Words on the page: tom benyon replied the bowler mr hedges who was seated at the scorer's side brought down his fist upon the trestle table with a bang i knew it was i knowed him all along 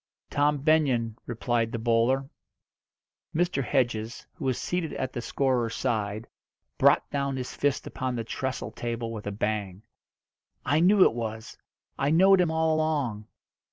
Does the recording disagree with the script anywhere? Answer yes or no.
no